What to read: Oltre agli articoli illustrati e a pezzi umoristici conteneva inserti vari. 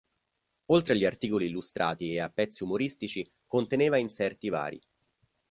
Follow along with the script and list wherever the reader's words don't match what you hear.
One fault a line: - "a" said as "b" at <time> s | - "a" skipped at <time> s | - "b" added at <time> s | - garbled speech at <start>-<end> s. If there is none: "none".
none